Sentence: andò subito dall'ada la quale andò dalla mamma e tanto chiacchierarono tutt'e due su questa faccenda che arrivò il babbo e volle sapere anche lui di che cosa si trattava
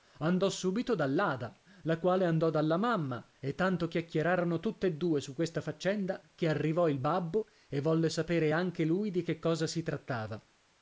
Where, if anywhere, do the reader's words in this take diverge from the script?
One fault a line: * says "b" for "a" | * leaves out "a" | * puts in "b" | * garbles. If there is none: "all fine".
all fine